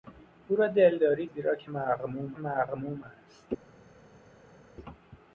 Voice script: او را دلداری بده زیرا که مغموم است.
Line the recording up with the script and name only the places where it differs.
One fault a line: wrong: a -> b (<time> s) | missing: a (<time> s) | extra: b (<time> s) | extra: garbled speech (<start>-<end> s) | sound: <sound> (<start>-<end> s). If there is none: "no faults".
missing: بده (1.2 s)
extra: مغموم (2.4 s)